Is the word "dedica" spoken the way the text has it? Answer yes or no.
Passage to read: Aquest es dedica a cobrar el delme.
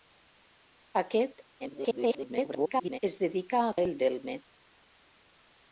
yes